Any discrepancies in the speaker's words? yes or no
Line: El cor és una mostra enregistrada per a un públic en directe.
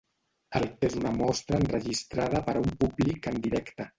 yes